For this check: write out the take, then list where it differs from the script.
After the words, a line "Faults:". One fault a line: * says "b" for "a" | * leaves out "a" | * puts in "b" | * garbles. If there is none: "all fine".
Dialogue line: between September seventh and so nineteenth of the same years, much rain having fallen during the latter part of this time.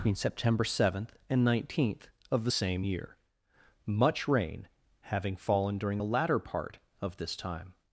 between September seventh and nineteenth of the same year, much rain having fallen during the latter part of this time.
Faults:
* leaves out "so"
* says "year" for "years"